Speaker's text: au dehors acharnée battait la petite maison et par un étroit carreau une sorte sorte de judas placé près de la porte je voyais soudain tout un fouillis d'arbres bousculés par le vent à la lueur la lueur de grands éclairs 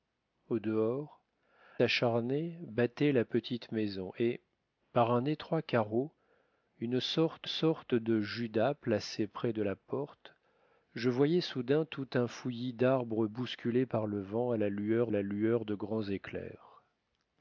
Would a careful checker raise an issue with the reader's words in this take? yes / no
no